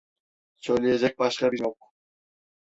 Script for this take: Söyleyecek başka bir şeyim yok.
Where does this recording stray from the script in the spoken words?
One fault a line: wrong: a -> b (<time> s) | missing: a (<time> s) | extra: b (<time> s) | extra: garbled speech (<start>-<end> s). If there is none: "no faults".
missing: şeyim (1.6 s)